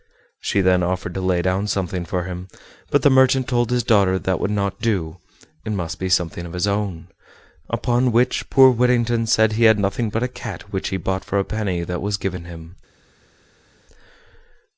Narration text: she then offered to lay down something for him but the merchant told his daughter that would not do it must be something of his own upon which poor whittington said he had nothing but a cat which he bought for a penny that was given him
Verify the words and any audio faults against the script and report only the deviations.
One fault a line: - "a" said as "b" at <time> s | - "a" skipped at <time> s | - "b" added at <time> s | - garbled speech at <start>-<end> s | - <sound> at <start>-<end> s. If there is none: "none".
none